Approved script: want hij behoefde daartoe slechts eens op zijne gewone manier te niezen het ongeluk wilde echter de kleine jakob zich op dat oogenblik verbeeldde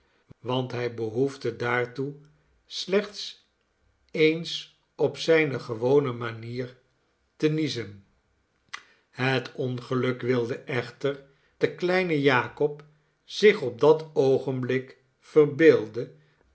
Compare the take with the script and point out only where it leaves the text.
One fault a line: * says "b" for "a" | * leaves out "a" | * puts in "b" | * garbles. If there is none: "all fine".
all fine